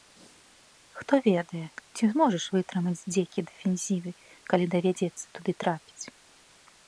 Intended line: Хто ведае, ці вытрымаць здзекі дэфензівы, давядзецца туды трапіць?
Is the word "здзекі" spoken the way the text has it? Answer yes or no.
yes